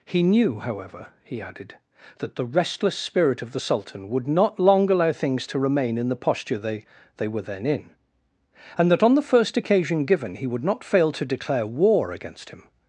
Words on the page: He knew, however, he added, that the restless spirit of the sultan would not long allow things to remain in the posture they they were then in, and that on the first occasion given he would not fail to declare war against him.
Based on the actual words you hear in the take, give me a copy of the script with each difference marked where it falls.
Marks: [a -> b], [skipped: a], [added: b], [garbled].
He knew, however, he added, that the restless spirit of the sultan would not long allow things to remain in the posture they they were then in, and that on the first occasion given he would not fail to declare war against him.